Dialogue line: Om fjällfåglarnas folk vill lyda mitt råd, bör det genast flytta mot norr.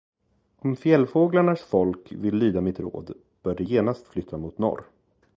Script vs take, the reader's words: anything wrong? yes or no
no